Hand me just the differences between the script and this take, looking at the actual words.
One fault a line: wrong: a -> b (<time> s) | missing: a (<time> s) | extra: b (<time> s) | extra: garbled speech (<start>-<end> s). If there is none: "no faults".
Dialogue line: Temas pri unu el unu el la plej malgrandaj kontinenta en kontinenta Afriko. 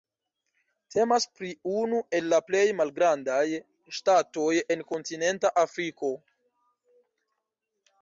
missing: unu el (2.3 s)
wrong: kontinenta -> ŝtatoj (4.0 s)